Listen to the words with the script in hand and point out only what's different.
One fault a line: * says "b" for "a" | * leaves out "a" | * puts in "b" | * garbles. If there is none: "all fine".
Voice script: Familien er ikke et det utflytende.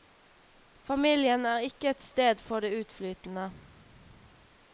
* puts in "sted for"